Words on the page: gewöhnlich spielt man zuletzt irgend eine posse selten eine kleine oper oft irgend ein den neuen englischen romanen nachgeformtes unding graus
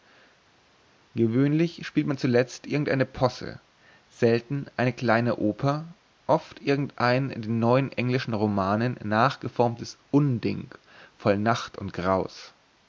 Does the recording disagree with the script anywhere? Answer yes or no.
yes